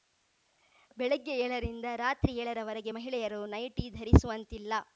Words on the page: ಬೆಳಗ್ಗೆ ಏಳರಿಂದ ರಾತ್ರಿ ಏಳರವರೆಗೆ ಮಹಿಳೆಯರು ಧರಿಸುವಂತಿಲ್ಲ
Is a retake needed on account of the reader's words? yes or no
yes